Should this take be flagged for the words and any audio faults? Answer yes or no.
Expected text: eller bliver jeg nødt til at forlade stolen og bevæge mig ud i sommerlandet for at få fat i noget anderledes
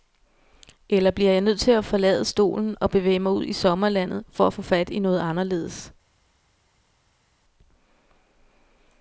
no